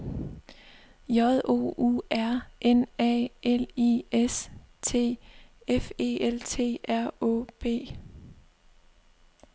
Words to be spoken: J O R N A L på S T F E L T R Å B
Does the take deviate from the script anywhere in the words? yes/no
yes